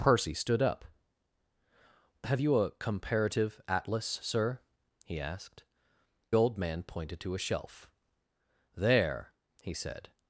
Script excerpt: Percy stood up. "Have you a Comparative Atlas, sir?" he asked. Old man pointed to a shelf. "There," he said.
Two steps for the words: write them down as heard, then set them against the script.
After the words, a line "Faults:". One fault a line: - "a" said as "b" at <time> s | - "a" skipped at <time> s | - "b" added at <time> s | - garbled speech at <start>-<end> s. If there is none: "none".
Percy stood up. "Have you a Comparative Atlas, sir?" he asked. Old man pointed to a shelf. "There," he said.
Faults:
none